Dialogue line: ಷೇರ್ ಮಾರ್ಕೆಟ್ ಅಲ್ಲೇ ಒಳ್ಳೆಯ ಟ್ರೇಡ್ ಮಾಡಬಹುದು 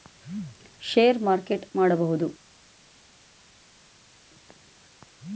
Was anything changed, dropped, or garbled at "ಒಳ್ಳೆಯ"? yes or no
yes